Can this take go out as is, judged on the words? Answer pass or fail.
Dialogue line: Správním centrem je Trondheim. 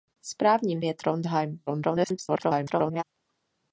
fail